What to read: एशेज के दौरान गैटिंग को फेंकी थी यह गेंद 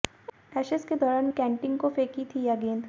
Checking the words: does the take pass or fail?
pass